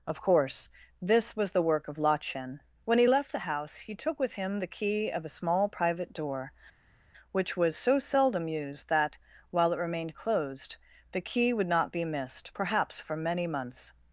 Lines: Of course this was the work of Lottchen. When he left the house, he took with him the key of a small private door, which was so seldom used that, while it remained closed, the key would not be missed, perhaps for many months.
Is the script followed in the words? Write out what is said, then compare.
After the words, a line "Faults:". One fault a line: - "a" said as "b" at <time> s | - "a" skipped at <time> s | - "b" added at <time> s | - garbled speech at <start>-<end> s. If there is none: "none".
Of course this was the work of Lottchen. When he left the house, he took with him the key of a small private door, which was so seldom used that, while it remained closed, the key would not be missed, perhaps for many months.
Faults:
none